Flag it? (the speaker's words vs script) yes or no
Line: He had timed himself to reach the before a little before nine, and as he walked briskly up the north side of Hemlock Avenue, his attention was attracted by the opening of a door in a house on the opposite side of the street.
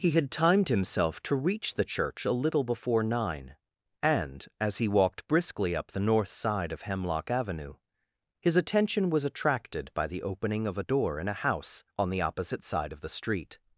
yes